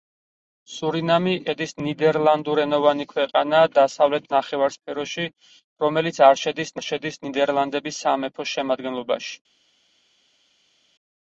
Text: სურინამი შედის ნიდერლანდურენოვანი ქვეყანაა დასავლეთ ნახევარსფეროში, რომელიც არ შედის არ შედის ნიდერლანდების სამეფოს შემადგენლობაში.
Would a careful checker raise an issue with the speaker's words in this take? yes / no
no